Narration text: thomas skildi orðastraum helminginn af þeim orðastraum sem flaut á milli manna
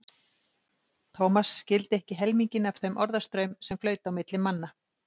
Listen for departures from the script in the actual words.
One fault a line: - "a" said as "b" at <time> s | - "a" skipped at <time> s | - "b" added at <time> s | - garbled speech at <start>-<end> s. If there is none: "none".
- "orðastraum" said as "ekki" at 2.0 s